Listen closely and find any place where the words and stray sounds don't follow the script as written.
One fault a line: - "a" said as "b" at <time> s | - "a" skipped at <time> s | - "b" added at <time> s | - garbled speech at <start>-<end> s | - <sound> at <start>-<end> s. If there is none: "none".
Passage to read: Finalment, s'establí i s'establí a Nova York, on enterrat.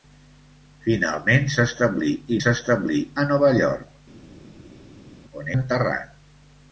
none